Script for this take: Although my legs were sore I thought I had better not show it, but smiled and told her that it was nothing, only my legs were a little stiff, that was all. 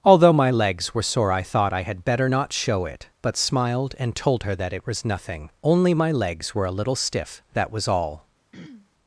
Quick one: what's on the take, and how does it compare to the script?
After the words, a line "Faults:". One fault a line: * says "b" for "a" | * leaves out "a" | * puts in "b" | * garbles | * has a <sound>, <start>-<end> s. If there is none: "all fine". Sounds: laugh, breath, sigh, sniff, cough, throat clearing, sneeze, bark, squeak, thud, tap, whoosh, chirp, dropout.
Although my legs were sore I thought I had better not show it, but smiled and told her that it was nothing, only my legs were a little stiff, that was all.
Faults:
* has a throat clearing, 8.5-8.9 s